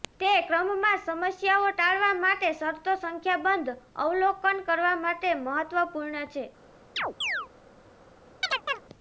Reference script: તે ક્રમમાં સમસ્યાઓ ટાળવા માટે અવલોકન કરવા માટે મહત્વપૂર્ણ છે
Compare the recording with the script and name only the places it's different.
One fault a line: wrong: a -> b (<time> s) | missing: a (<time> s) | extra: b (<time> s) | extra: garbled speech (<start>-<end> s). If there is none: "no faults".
extra: શરતો સંખ્યાબંધ (2.5 s)